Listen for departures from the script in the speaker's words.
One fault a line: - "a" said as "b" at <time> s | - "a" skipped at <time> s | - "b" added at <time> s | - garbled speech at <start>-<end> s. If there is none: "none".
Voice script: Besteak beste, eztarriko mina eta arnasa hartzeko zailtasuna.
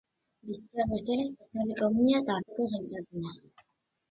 - "arnasa" skipped at 2.4 s